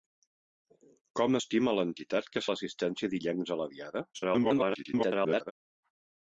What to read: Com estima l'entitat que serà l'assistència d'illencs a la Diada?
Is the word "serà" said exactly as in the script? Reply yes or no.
no